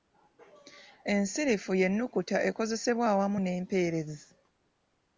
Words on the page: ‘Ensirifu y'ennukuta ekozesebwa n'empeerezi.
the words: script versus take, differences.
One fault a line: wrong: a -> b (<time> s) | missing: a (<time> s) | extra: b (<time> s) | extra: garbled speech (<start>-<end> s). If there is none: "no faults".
extra: awamu (3.1 s)